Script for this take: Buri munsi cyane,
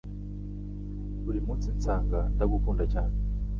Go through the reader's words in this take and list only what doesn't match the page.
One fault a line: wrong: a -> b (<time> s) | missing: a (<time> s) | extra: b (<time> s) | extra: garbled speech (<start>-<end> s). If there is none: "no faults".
extra: nsanga ndagukunda (1.8 s)